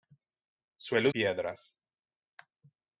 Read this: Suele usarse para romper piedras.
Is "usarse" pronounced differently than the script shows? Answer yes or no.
yes